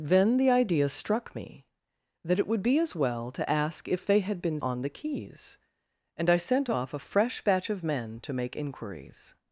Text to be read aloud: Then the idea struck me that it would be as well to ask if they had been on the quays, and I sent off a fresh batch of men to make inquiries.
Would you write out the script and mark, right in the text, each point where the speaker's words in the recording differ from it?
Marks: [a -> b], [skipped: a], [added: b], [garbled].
Then the idea struck me that it would be as well to ask if they had been on the quays, and I sent off a fresh batch of men to make inquiries.